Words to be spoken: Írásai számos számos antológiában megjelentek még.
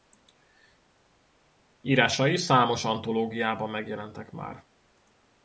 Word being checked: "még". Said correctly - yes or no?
no